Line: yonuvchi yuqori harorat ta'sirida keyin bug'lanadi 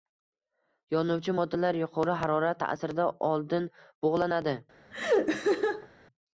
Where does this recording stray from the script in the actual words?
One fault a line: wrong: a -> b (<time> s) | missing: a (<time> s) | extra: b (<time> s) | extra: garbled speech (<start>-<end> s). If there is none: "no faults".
extra: moddalar (1.4 s)
wrong: keyin -> oldin (3.3 s)